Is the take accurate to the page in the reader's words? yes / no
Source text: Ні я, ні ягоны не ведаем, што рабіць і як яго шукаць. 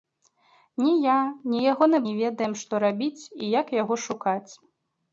yes